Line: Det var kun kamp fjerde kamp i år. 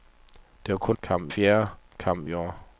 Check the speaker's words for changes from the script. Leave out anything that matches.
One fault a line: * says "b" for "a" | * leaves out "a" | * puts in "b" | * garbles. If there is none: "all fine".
all fine